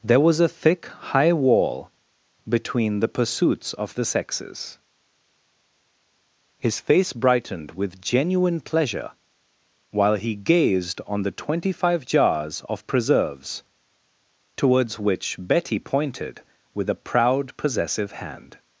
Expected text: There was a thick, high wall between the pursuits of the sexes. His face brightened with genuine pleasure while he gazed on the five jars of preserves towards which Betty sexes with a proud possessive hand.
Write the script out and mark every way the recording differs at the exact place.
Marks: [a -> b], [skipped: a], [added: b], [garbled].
There was a thick, high wall between the pursuits of the sexes. His face brightened with genuine pleasure while he gazed on the [added: twenty] five jars of preserves towards which Betty [sexes -> pointed] with a proud possessive hand.